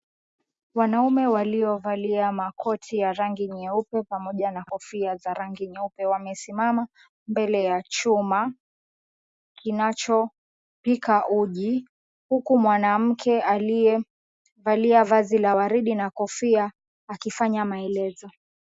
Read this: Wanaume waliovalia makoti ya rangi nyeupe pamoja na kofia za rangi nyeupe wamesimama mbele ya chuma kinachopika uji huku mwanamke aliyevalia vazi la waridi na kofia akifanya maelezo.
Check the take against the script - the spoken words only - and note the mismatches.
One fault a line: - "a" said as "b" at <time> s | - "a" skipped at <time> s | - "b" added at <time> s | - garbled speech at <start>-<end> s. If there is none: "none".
none